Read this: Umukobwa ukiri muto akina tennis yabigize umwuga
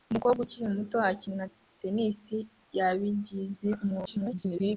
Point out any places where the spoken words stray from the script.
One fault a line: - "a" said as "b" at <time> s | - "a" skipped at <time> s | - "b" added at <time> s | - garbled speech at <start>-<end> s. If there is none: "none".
- garbled speech at 4.1-4.8 s